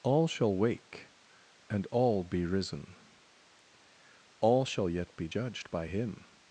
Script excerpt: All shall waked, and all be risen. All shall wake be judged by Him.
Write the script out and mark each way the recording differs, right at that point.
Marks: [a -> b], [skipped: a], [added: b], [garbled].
All shall [waked, -> wake] and all be risen. All shall [wake -> yet] be judged by Him.